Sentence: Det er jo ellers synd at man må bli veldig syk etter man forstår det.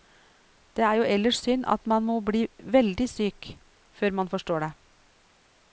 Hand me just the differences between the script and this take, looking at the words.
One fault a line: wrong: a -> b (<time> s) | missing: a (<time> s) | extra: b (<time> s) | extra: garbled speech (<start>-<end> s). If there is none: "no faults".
wrong: etter -> før (3.9 s)